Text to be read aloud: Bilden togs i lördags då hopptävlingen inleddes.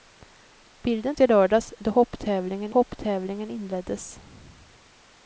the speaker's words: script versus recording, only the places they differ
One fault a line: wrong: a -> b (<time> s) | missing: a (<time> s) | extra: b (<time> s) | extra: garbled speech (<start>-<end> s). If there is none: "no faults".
missing: togs (1.1 s)
extra: hopptävlingen (2.7 s)